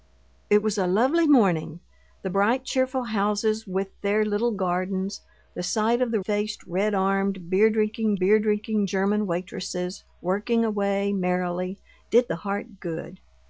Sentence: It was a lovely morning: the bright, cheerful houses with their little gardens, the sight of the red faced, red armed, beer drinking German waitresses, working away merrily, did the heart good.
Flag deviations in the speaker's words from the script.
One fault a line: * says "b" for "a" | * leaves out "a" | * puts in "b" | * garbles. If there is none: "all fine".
* leaves out "red"
* puts in "beer drinking"